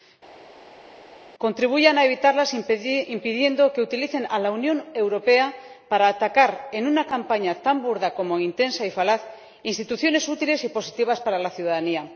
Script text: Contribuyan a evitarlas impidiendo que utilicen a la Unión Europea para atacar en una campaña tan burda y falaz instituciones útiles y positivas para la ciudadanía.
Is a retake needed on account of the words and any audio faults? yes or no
yes